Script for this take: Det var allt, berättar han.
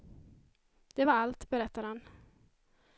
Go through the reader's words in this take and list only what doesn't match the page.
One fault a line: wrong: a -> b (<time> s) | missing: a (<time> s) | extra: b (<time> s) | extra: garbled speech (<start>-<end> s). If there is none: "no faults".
no faults